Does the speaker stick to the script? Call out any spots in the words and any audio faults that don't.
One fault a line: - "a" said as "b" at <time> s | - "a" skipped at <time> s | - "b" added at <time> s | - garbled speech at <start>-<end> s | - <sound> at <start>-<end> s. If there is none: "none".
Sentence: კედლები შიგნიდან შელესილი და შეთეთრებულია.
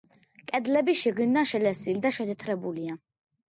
none